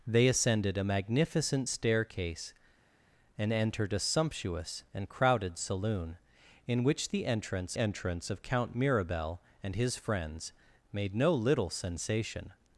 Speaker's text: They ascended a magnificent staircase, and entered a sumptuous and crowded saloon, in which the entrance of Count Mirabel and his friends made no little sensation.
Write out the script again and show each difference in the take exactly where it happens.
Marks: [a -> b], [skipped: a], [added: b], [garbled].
They ascended a magnificent staircase, and entered a sumptuous and crowded saloon, in which the entrance [added: entrance] of Count Mirabel and his friends made no little sensation.